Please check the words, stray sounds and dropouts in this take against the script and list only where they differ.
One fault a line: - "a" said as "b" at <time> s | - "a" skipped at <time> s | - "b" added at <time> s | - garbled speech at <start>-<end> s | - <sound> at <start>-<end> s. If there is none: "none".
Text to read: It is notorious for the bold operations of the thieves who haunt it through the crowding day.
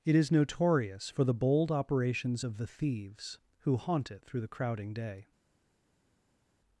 none